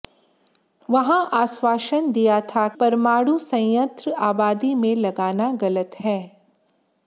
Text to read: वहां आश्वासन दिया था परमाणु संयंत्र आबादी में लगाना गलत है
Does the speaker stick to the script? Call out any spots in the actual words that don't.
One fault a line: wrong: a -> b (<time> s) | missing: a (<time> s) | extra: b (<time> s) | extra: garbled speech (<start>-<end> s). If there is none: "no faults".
no faults